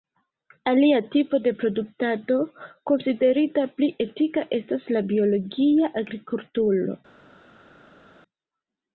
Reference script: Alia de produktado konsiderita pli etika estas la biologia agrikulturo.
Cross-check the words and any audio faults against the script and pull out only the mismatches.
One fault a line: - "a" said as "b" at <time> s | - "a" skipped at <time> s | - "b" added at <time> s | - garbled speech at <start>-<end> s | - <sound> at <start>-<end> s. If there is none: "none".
- "tipo" added at 1.1 s